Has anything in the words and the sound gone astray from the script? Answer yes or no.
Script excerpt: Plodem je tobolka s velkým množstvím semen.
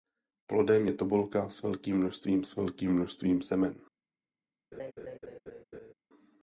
yes